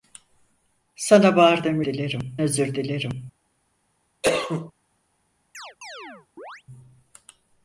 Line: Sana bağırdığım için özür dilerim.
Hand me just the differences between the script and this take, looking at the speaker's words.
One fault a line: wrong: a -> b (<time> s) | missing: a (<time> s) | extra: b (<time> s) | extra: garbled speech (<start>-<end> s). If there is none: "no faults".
wrong: için -> dilerim (1.8 s)